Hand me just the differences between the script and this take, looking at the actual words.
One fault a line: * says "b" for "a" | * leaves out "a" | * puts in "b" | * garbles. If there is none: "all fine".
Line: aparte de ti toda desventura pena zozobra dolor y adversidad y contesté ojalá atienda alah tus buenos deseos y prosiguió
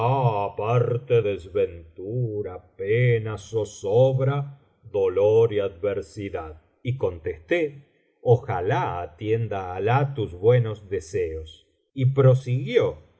* leaves out "de ti toda"